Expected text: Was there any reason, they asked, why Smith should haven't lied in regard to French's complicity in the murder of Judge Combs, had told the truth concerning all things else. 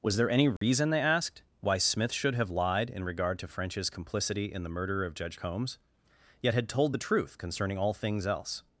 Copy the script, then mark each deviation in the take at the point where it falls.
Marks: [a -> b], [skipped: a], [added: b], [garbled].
Was there any reason, they asked, why Smith should [haven't -> have] lied in regard to French's complicity in the murder of Judge Combs, [added: yet] had told the truth concerning all things else.